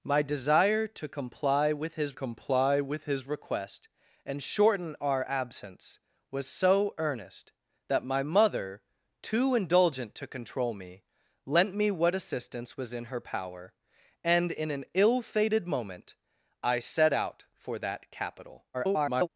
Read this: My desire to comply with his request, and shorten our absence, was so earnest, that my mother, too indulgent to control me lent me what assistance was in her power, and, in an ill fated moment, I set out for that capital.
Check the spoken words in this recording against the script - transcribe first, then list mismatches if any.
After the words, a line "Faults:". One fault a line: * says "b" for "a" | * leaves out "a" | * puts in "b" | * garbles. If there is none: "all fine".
My desire to comply with his comply with his request, and shorten our absence, was so earnest, that my mother, too indulgent to control me lent me what assistance was in her power, and, in an ill fated moment, I set out for that capital. [garbled]
Faults:
* puts in "comply with his"
* garbles